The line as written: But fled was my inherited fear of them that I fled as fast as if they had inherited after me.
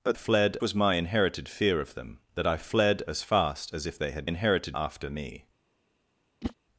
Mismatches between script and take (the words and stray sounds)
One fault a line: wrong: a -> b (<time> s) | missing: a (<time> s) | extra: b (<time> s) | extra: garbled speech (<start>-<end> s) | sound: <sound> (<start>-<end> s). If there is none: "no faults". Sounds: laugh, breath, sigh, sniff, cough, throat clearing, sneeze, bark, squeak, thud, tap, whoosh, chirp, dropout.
sound: whoosh (6.4-6.5 s)